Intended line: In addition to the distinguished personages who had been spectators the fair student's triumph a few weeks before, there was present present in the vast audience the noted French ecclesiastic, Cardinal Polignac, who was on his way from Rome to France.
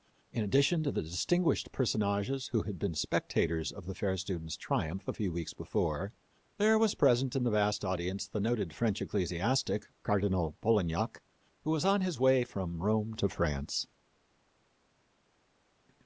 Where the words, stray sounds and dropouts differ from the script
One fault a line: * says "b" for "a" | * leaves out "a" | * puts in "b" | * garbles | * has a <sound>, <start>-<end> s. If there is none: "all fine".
* puts in "of"
* leaves out "present"